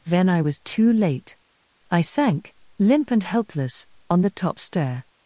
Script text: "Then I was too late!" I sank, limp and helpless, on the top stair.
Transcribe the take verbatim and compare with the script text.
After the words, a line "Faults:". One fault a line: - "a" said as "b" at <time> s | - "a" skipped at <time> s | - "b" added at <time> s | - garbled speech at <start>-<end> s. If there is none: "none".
"Then I was too late!" I sank, limp and helpless, on the top stair.
Faults:
none